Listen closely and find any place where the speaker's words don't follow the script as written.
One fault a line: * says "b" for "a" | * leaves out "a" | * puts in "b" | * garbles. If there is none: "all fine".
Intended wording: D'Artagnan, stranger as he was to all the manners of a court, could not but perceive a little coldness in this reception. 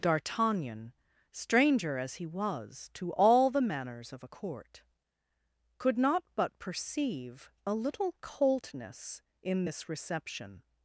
all fine